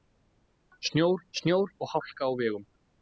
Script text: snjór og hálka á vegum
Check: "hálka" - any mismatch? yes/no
no